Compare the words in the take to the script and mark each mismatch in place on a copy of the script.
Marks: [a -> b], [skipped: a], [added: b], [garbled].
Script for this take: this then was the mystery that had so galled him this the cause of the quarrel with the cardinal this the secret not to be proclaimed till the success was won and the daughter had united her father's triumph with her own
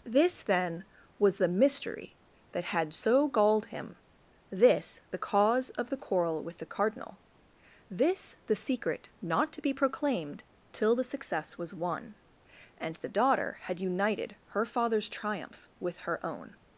this then was the mystery that had so galled him this the cause of the quarrel with the cardinal this the secret not to be proclaimed till the success was won and the daughter had united her father's triumph with her own